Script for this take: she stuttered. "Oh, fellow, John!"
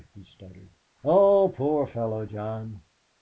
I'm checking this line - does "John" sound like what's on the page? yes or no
yes